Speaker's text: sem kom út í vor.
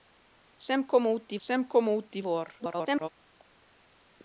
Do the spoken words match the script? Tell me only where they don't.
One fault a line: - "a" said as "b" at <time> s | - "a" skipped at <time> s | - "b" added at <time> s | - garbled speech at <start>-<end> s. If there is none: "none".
- "sem kom út" added at 1.5 s
- garbled speech at 2.6-3.1 s